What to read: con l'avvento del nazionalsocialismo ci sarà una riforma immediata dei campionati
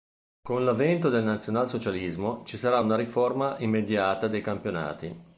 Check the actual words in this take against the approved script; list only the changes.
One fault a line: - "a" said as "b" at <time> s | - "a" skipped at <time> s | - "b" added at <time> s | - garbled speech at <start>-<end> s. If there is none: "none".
none